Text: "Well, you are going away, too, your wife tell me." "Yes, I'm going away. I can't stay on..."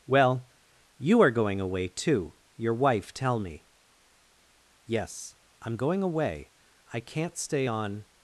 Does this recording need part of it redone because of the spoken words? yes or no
no